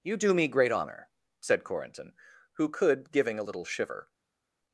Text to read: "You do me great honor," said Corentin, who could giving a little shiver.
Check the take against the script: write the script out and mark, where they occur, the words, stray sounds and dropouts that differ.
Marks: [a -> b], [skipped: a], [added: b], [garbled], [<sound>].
"You do me great honor," said Corentin, who could giving a little shiver.